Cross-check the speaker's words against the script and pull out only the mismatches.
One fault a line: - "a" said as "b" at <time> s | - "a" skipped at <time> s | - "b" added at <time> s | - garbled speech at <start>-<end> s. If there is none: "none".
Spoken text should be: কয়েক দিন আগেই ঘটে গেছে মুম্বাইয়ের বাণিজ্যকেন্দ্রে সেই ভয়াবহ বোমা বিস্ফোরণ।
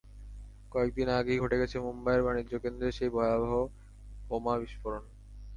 none